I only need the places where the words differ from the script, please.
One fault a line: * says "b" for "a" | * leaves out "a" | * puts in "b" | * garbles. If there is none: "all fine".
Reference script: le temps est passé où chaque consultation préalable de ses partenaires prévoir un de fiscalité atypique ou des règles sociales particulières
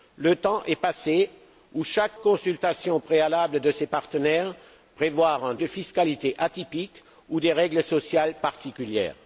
all fine